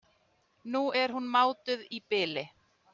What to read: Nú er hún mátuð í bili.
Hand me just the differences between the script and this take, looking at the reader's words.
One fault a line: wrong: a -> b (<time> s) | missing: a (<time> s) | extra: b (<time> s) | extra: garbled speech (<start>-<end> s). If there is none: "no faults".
no faults